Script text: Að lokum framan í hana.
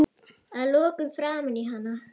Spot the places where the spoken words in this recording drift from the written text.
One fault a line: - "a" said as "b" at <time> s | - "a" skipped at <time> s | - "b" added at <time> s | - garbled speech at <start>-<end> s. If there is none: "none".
none